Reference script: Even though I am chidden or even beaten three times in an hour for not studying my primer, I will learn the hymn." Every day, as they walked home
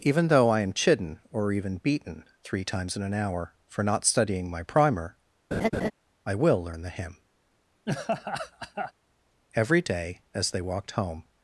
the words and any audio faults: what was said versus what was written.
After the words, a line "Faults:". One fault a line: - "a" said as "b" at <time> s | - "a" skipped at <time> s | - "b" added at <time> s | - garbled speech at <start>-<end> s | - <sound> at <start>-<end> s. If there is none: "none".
Even though I am chidden or even beaten three times in an hour for not studying my primer, I will learn the hymn." Every day, as they walked home
Faults:
- laugh at 5.5-5.9 s
- laugh at 7.9-8.9 s